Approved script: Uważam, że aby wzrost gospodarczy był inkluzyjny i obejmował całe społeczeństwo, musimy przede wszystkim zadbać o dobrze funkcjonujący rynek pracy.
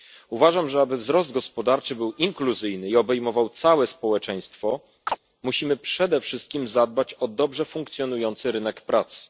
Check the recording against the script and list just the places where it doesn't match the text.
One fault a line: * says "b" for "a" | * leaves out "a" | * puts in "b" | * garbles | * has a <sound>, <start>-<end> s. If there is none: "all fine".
* has a chirp, 5.1-5.2 s